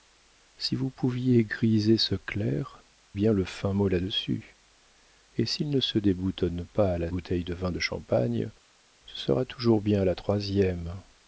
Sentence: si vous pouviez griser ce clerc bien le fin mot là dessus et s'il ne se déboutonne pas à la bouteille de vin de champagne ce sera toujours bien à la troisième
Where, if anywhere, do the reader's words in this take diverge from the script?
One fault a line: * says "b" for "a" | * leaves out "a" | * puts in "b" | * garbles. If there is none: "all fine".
all fine